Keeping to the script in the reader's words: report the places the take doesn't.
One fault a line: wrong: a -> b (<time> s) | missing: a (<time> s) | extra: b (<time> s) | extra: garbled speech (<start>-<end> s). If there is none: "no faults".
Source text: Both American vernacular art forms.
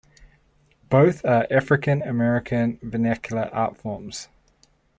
extra: are African (1.2 s)